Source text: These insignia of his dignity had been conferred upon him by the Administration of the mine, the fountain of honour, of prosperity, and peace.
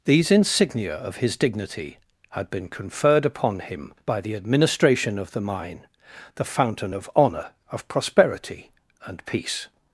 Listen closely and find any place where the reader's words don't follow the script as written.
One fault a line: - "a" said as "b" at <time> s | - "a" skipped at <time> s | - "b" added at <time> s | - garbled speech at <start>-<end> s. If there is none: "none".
none